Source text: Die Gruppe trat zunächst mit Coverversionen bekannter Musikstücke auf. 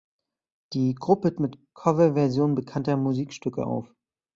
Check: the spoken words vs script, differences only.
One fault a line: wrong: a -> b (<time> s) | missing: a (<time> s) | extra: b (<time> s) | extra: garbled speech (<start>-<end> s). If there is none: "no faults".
missing: trat zunächst (1.4 s)